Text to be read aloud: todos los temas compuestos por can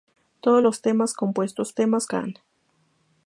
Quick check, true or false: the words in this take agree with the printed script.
false